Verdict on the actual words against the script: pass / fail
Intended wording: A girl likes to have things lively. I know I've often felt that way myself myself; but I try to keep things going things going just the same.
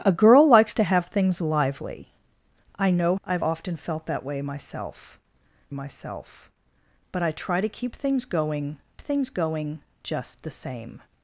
pass